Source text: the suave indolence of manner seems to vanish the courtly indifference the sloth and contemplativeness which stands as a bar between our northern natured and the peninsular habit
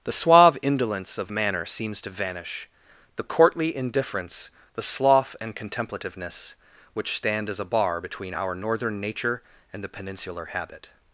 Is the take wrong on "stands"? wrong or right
wrong